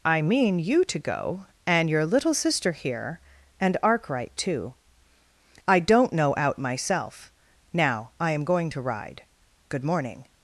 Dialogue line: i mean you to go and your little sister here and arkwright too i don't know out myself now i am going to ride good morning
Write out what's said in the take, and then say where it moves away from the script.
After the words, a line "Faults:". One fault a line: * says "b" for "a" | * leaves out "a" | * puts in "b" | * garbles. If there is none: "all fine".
i mean you to go and your little sister here and arkwright too i don't know out myself now i am going to ride good morning
Faults:
all fine